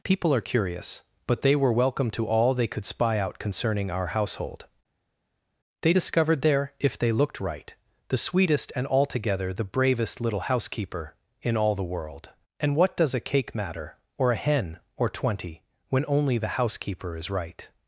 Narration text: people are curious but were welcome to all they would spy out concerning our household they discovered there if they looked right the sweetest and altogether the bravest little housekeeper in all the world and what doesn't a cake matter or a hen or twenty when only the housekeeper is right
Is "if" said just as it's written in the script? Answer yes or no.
yes